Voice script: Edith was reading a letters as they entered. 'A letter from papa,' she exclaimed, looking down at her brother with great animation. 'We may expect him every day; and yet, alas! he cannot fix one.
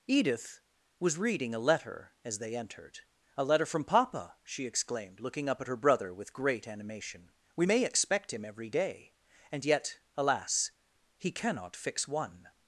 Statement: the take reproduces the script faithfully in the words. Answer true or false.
false